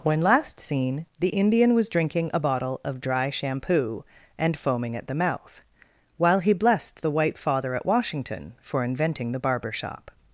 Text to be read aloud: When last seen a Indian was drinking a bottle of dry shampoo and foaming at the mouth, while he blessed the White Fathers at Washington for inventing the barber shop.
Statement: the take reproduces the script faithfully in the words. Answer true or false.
false